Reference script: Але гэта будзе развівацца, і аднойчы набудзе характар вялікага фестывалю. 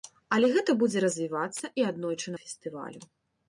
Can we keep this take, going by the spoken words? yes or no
no